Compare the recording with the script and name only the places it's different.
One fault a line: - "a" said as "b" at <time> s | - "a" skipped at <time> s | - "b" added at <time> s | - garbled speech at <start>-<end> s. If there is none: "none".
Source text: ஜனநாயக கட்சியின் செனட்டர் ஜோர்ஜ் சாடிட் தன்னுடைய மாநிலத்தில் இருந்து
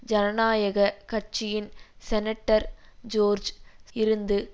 - "சாடிட் தன்னுடைய மாநிலத்தில்" skipped at 3.5 s